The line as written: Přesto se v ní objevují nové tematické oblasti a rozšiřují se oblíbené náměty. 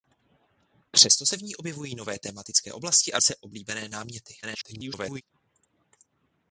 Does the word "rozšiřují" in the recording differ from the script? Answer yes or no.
yes